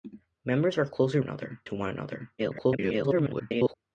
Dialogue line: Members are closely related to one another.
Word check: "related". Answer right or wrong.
wrong